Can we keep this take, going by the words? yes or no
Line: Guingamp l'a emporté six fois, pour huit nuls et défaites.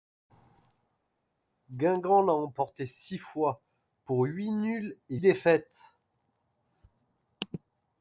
yes